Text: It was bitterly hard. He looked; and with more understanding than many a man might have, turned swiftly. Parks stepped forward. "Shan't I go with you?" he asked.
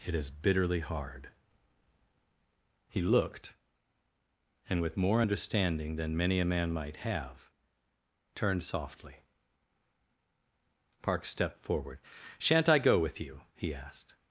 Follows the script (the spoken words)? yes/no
no